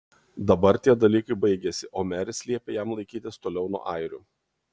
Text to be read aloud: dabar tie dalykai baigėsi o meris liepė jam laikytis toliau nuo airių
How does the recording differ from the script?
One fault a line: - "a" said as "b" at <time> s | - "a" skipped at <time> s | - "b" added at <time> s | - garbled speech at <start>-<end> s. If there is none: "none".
none